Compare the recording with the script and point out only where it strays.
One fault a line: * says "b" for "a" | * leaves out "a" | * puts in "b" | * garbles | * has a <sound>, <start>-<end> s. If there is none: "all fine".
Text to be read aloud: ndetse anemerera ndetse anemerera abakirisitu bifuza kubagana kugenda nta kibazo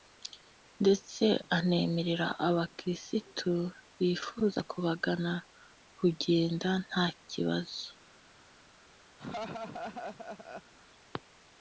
* leaves out "ndetse anemerera"
* has a laugh, 9.2-10.7 s